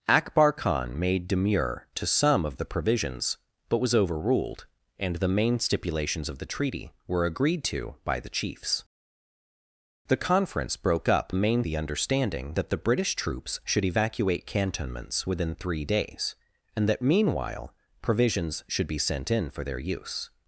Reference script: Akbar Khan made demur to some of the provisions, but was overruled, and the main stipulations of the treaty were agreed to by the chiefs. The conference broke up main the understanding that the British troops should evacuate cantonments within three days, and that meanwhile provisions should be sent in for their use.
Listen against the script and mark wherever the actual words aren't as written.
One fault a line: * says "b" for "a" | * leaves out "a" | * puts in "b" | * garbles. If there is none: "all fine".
all fine